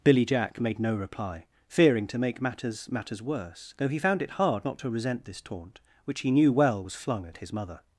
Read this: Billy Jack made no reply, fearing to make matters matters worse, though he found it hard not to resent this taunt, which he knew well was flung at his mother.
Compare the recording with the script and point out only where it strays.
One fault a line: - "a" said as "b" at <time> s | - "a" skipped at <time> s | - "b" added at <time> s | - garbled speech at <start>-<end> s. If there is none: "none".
none